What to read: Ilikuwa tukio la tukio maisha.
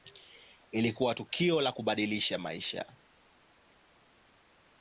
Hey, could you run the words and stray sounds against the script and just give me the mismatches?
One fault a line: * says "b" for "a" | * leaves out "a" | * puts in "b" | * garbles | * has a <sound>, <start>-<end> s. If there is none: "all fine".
* says "kubadilisha" for "tukio"